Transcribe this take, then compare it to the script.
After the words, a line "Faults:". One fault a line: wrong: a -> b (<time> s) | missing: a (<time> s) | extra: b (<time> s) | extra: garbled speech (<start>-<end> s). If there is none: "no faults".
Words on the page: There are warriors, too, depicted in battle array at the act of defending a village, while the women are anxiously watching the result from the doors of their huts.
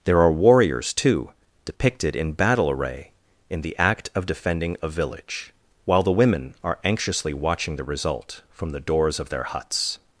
There are warriors, too, depicted in battle array in the act of defending a village, while the women are anxiously watching the result from the doors of their huts.
Faults:
wrong: at -> in (3.5 s)